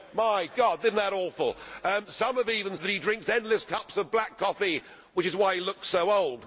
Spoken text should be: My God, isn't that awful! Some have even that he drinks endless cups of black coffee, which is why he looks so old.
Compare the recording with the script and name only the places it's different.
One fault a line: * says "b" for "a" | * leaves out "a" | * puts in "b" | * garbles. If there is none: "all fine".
all fine